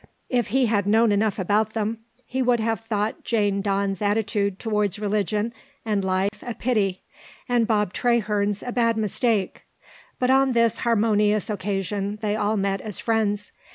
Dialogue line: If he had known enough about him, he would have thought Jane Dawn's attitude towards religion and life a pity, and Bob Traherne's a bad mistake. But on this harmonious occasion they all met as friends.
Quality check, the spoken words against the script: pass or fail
fail